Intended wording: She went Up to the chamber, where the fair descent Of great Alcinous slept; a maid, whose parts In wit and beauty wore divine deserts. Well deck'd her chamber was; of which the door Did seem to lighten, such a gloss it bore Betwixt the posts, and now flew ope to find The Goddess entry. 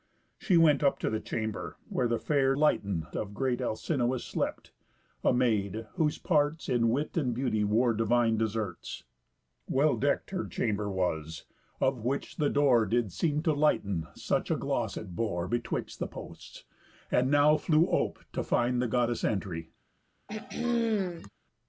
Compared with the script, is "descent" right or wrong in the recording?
wrong